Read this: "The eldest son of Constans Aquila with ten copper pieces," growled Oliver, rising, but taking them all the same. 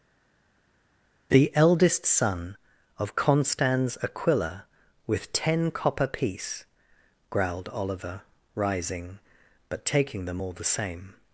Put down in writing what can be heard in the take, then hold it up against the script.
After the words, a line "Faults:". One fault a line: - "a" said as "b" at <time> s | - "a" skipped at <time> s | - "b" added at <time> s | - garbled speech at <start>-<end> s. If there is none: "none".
"The eldest son of Constans Aquila with ten copper piece," growled Oliver, rising, but taking them all the same.
Faults:
- "pieces" said as "piece" at 6.1 s